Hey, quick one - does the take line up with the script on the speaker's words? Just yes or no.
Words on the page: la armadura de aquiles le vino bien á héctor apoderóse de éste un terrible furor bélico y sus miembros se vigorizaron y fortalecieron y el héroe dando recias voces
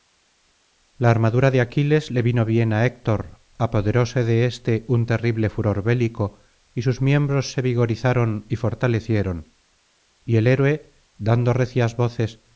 yes